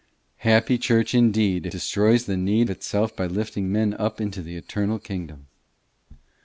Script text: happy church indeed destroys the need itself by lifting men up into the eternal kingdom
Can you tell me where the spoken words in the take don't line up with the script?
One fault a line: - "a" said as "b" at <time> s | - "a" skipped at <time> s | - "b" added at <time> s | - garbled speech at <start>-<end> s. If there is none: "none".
none